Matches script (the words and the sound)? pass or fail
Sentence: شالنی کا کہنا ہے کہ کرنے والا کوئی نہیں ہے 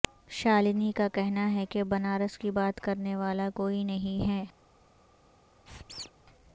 fail